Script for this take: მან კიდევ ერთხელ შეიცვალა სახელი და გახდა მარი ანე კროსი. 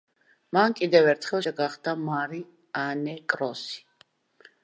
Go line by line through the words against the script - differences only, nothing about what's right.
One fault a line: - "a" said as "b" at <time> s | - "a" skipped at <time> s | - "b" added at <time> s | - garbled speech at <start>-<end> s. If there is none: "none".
- "შეიცვალა სახელი" skipped at 1.4 s